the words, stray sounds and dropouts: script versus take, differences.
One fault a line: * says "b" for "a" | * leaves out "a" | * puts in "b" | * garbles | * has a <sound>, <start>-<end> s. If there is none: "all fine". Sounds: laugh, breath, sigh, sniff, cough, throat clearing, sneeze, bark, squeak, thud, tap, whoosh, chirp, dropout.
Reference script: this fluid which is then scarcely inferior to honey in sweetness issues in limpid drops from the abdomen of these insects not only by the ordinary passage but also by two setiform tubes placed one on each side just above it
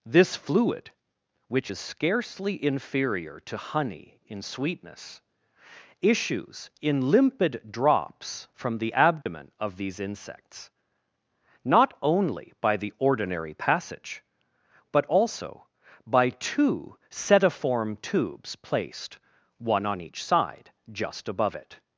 * leaves out "then"
* has a dropout, 9.2-9.3 s